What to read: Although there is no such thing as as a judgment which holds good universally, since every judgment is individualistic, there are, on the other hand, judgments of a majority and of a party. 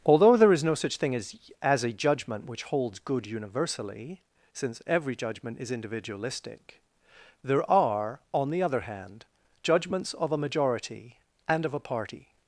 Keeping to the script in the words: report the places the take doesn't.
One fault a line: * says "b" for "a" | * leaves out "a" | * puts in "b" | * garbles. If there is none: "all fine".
all fine